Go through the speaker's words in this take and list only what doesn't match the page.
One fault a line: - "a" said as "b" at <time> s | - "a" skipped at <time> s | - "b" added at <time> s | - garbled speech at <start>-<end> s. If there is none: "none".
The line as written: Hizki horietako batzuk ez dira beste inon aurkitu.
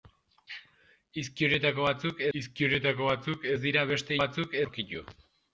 - "hizki horietako batzuk" added at 2.4 s
- "inon" said as "batzuk" at 4.2 s